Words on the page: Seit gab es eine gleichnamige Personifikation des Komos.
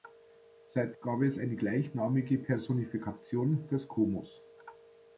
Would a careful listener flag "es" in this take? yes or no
no